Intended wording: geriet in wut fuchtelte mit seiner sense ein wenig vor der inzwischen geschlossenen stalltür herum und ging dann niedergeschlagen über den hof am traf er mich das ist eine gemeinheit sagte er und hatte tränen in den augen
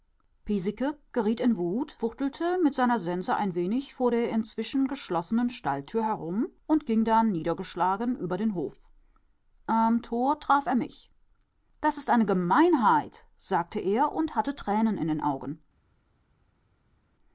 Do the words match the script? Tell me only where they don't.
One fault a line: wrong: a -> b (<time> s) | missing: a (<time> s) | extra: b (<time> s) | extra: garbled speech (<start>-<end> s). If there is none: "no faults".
extra: tor (10.0 s)